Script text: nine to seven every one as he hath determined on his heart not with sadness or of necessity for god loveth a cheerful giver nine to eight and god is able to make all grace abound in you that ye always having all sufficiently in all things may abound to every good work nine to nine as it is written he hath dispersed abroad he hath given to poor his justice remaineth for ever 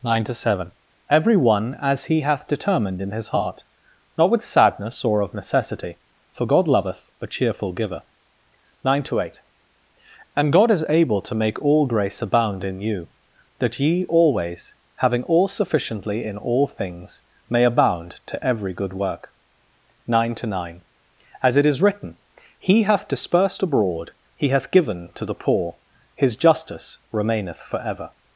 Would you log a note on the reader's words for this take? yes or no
yes